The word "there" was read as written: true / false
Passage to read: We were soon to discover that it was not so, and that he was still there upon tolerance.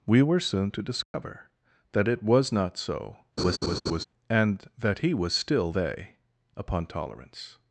false